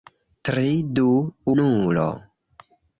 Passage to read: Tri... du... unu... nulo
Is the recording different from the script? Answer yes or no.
yes